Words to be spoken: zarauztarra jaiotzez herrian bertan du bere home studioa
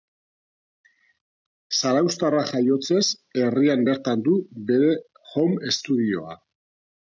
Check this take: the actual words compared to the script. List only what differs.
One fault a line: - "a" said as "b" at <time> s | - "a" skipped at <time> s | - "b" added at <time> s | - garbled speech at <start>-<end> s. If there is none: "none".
none